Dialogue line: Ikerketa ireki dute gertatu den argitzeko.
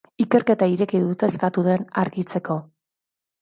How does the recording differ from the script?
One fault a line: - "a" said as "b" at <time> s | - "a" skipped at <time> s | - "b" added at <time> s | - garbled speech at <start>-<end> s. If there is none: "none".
none